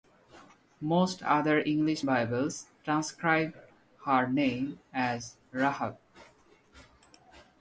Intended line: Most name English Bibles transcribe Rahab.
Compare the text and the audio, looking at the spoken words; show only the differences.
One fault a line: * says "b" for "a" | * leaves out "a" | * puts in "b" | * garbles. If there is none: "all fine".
* says "other" for "name"
* puts in "her name as"